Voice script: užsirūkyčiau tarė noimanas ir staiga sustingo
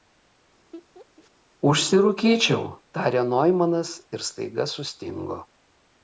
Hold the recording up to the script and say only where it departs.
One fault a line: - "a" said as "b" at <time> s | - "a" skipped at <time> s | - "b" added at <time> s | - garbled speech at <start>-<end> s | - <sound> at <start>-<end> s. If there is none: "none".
- laugh at 0.7-1.3 s